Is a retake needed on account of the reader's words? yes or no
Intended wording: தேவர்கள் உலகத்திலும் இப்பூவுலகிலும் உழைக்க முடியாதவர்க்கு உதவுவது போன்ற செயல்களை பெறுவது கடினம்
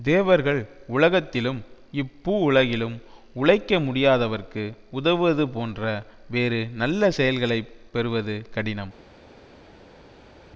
yes